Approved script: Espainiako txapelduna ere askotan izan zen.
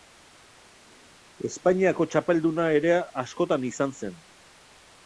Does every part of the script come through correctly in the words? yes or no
yes